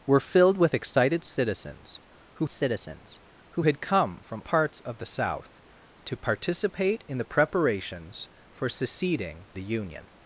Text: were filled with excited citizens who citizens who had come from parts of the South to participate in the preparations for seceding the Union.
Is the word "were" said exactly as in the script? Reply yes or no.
yes